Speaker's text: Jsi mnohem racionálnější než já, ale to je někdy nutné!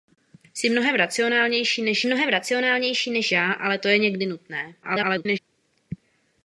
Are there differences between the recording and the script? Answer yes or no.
yes